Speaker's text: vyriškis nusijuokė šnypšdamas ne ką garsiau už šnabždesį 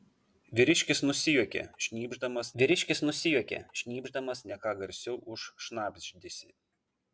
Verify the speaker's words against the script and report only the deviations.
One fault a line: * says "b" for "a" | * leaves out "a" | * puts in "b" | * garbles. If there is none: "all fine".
* puts in "vyriškis nusijuokė šnypšdamas"